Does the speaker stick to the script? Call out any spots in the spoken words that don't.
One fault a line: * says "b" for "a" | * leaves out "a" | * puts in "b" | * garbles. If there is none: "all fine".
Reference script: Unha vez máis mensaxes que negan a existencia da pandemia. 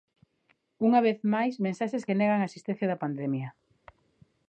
all fine